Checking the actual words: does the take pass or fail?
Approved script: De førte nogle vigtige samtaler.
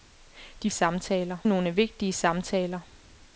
fail